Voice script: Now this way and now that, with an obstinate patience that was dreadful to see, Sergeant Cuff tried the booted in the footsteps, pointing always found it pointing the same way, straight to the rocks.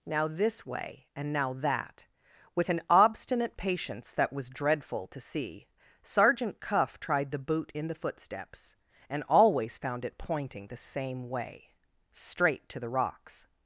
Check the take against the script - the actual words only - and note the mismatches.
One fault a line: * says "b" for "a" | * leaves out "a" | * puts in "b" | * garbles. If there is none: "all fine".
* says "boot" for "booted"
* says "and" for "pointing"